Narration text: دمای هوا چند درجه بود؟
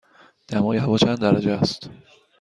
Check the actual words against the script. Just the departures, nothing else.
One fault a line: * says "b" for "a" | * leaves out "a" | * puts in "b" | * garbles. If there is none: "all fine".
* says "است" for "بود"